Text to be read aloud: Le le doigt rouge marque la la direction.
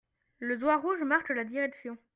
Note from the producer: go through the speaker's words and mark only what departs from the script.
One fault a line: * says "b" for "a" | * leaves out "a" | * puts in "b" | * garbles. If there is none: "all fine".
* leaves out "le"
* leaves out "la"